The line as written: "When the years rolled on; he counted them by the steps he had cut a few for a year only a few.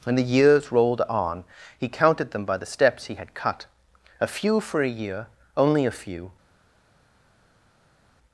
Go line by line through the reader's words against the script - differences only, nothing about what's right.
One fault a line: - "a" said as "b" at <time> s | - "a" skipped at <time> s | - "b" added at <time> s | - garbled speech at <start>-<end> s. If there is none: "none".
none